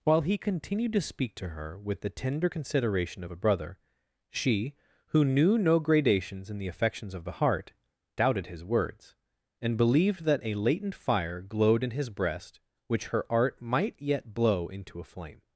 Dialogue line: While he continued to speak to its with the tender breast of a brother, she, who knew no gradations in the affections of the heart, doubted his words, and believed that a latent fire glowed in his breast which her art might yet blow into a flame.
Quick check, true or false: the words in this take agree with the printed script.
false